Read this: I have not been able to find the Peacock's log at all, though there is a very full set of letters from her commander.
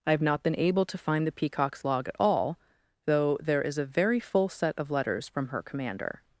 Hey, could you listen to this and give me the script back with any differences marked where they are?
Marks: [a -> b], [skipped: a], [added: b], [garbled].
I have not been able to find the Peacock's log at all, though there is a very full set of letters from her commander.